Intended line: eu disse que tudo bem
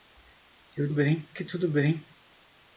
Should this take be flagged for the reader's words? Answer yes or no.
yes